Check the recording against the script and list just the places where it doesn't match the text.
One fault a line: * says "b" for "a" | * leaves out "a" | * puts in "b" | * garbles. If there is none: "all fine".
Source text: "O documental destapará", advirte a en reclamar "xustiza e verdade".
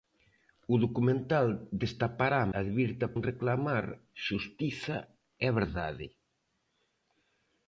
all fine